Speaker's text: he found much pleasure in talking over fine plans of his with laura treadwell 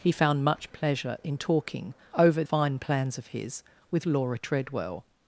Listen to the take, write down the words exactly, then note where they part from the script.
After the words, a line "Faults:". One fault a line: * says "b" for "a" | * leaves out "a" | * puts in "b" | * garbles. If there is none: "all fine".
he found much pleasure in talking over fine plans of his with laura treadwell
Faults:
all fine